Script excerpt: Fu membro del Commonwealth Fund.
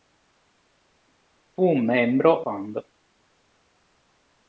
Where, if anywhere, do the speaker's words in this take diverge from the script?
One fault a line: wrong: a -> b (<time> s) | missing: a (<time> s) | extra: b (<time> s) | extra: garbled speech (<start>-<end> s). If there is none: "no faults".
missing: del Commonwealth (2.4 s)